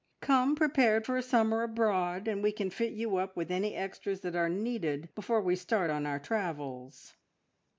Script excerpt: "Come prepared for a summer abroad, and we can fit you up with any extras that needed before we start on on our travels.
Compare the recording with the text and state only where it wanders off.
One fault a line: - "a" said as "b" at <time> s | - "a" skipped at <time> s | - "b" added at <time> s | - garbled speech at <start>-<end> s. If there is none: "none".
- "are" added at 4.4 s
- "on" skipped at 6.0 s